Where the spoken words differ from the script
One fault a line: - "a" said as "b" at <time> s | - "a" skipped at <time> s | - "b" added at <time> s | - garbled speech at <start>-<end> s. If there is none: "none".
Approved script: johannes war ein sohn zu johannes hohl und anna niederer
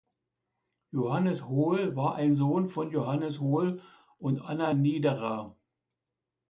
- "hohl" added at 1.5 s
- "zu" said as "von" at 2.7 s